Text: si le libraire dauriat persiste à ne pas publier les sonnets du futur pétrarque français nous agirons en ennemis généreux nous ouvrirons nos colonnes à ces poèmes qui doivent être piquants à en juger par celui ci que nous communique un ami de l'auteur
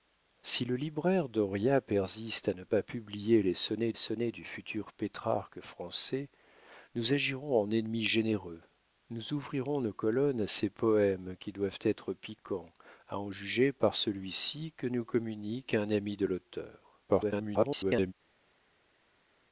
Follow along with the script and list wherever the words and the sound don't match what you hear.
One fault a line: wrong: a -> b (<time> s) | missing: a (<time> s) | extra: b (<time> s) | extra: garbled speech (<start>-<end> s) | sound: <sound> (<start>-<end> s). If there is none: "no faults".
extra: sonnets (3.9 s)
extra: garbled speech (17.1-18.1 s)